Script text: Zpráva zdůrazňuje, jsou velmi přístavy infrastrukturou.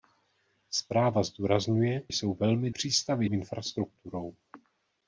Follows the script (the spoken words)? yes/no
yes